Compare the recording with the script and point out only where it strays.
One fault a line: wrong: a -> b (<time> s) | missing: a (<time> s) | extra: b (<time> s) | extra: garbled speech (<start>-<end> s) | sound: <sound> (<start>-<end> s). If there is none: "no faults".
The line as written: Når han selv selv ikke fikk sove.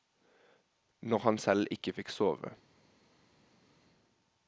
missing: selv (1.7 s)